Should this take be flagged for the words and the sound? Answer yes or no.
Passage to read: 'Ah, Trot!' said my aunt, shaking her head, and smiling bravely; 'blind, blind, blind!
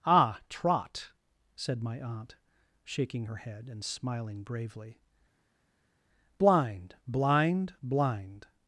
no